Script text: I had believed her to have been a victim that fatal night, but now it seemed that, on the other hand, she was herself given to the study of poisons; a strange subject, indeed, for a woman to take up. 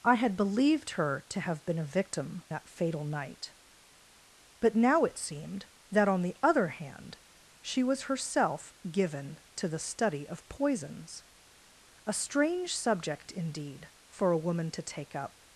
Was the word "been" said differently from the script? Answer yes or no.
no